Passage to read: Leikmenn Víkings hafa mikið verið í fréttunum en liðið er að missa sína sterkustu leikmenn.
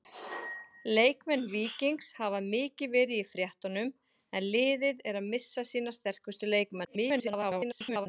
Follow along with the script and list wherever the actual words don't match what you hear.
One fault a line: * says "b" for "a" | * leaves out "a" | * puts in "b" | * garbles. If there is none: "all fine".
* garbles